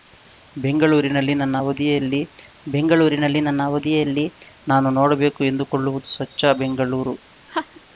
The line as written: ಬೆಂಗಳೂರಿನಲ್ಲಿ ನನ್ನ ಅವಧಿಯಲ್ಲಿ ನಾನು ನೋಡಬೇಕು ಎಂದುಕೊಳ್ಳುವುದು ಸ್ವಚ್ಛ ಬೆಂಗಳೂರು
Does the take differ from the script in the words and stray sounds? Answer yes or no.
yes